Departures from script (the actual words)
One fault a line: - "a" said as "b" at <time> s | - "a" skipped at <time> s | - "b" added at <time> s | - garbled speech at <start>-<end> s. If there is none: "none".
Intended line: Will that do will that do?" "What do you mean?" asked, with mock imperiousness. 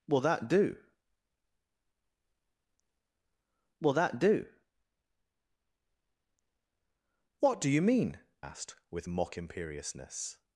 none